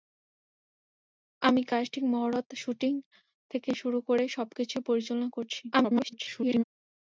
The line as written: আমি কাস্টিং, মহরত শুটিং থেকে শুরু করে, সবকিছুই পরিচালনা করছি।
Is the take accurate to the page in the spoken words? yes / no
no